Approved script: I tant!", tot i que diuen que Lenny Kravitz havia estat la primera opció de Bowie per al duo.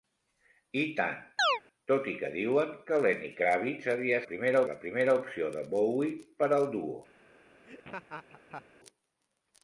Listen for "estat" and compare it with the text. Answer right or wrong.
wrong